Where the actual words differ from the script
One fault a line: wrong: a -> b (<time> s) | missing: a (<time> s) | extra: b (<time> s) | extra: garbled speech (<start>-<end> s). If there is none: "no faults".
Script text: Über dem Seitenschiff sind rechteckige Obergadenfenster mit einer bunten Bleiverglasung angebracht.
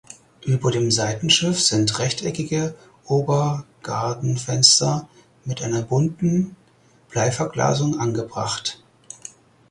no faults